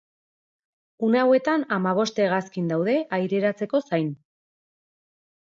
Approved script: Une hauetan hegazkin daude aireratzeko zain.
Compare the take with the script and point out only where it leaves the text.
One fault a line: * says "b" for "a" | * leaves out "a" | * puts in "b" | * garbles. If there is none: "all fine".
* puts in "hamabost"